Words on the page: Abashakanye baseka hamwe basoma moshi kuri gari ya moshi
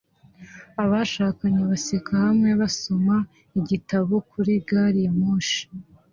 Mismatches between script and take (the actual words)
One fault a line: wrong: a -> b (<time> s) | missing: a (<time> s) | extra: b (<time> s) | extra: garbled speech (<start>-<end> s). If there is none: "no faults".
wrong: moshi -> igitabo (3.6 s)